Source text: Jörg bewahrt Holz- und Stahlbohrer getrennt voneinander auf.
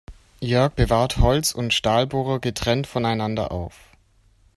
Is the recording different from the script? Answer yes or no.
no